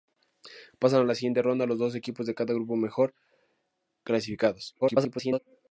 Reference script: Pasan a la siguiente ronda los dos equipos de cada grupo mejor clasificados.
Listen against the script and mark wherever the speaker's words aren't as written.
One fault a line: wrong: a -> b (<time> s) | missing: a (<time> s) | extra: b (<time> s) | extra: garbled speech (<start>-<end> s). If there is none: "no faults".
extra: garbled speech (4.8-5.4 s)